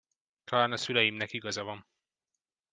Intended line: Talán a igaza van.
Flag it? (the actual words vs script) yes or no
yes